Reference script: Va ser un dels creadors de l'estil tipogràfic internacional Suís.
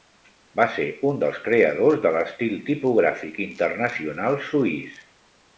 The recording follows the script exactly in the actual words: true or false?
true